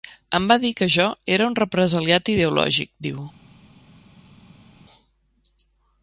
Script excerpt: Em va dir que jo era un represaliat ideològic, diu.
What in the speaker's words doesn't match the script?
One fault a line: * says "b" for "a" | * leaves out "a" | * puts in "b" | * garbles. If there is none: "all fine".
all fine